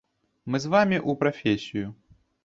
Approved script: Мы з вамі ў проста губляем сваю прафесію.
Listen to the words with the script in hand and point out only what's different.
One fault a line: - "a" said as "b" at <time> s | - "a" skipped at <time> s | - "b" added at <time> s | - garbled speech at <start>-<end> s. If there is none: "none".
- "проста губляем сваю" skipped at 1.1 s